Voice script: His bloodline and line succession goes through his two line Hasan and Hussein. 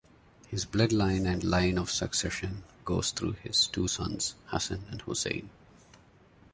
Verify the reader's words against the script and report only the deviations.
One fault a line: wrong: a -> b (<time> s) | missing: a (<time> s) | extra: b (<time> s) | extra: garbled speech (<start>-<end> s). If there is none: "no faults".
extra: of (1.8 s)
wrong: line -> sons (3.9 s)